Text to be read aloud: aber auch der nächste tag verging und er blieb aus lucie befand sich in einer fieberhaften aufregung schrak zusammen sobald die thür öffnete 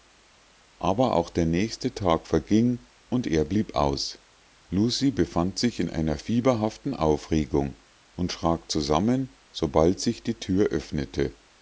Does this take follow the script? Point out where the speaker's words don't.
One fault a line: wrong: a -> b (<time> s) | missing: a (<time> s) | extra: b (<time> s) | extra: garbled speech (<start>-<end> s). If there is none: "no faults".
extra: und (8.2 s)
extra: sich (10.0 s)